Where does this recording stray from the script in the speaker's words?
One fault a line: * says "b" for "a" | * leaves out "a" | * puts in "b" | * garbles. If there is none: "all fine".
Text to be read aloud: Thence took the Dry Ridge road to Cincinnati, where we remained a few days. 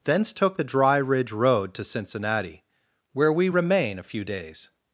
* says "remain" for "remained"